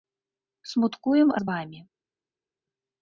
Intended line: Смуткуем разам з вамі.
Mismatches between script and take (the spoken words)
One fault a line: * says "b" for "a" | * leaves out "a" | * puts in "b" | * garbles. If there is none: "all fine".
* leaves out "разам"